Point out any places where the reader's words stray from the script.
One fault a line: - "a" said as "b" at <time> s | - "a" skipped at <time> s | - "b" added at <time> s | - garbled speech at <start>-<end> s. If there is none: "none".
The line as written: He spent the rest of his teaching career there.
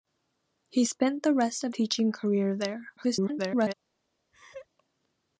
- "his" skipped at 1.7 s
- garbled speech at 3.0-3.7 s